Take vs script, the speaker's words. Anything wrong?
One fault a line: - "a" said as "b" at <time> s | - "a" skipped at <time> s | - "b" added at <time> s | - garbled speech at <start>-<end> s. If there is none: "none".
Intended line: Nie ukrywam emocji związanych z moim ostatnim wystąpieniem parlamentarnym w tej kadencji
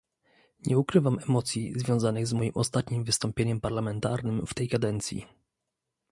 none